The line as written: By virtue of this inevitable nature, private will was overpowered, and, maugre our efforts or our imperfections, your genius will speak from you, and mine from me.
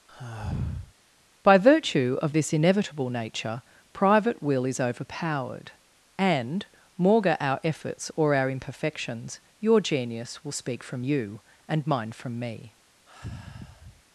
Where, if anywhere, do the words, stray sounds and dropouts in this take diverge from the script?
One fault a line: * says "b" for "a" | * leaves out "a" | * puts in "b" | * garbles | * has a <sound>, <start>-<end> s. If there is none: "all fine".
* has a sigh, 0.1-0.9 s
* says "is" for "was"
* has a sigh, 13.1-14.0 s